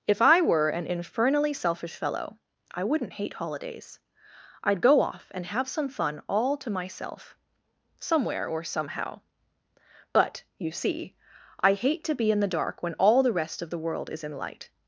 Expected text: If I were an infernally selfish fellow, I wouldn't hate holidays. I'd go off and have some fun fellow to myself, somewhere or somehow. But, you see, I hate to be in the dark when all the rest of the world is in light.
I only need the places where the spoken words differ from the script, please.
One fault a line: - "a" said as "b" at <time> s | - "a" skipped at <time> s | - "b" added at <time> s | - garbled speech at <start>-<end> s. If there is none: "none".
- "fellow" said as "all" at 6.3 s